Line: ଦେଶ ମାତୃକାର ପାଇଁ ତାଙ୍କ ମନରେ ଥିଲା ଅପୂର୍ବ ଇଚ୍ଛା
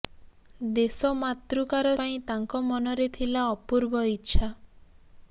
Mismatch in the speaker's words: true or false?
false